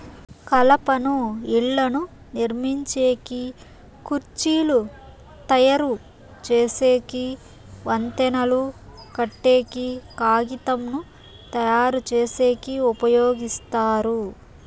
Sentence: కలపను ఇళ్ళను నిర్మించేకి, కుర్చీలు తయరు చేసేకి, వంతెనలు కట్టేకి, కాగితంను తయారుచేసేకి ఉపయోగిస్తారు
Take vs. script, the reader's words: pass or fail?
pass